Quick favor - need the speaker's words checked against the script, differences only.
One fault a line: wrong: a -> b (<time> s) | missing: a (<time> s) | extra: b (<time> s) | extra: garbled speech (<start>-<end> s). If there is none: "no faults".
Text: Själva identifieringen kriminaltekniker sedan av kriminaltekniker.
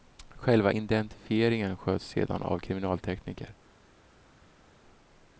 wrong: kriminaltekniker -> sköts (1.8 s)